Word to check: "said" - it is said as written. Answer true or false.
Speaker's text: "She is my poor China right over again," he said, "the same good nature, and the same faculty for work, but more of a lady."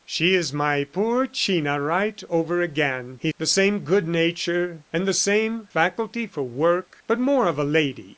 false